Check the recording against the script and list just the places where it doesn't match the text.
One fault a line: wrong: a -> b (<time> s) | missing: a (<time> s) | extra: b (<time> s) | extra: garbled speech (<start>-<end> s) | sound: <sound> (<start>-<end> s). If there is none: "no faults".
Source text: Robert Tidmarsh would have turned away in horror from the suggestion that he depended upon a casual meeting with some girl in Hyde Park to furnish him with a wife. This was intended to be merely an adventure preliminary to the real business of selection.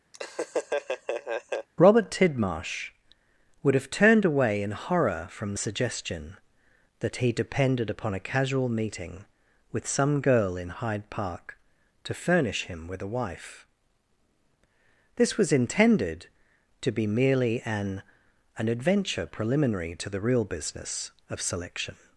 sound: laugh (0.1-1.7 s)
extra: an (18.6 s)